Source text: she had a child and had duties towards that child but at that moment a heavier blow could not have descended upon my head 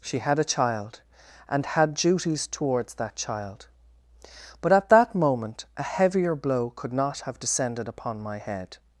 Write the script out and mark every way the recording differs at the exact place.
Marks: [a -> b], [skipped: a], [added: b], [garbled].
she had a child and had duties towards that child but at that moment a heavier blow could not have descended upon my head